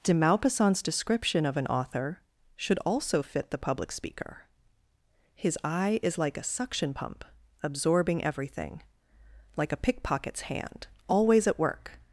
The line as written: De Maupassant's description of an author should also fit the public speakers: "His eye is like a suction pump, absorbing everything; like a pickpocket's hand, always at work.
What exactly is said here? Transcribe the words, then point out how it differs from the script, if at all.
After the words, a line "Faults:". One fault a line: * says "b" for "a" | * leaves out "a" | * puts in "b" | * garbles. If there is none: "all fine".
De Maupassant's description of an author should also fit the public speaker: "His eye is like a suction pump, absorbing everything; like a pickpocket's hand, always at work.
Faults:
* says "speaker" for "speakers"